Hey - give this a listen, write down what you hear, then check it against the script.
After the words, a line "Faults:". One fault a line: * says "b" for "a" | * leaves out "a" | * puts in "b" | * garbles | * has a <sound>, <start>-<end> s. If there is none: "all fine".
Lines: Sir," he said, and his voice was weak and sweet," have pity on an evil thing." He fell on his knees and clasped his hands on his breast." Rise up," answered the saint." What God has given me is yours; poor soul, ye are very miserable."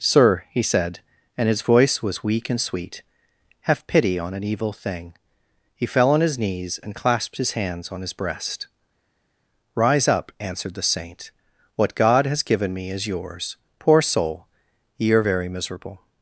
Sir," he said, and his voice was weak and sweet," have pity on an evil thing." He fell on his knees and clasped his hands on his breast." Rise up," answered the saint." What God has given me is yours; poor soul, ye are very miserable."
Faults:
all fine